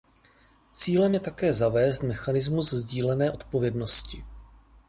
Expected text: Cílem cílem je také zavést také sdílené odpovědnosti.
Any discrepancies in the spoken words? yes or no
yes